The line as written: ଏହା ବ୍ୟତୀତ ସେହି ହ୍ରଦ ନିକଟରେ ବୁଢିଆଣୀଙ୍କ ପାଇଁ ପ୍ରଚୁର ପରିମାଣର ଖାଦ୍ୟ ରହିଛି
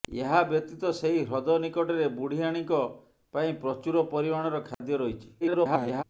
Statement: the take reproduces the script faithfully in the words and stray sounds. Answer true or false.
false